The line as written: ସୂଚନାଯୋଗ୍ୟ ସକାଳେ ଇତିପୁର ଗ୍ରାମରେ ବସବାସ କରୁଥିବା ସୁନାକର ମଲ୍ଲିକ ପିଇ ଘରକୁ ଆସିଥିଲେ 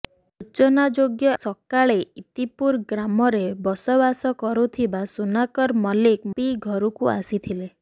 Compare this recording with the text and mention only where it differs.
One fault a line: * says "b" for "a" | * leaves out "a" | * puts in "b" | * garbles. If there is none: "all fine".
all fine